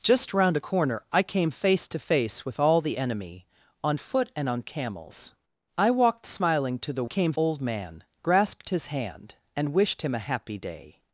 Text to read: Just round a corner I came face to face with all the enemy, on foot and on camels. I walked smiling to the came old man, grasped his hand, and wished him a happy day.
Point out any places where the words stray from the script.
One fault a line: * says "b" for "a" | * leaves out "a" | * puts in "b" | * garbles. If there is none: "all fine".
all fine